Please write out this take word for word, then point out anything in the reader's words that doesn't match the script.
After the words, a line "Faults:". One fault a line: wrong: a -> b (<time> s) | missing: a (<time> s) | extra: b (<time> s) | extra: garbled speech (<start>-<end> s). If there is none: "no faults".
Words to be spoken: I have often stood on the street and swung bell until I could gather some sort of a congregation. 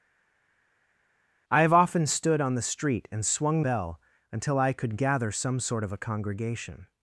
I have often stood on the street and swung bell until I could gather some sort of a congregation.
Faults:
no faults